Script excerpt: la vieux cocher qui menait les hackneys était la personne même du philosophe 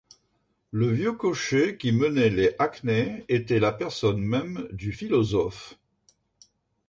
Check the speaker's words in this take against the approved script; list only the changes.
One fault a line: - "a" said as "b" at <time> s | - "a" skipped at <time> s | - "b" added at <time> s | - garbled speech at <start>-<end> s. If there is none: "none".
- "la" said as "le" at 0.7 s